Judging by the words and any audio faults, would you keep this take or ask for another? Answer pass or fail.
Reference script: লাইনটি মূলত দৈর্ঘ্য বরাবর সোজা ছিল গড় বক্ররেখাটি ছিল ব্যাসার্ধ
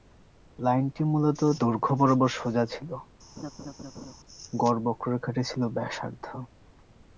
fail